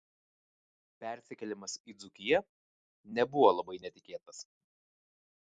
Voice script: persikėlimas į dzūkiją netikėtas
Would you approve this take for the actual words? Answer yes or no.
no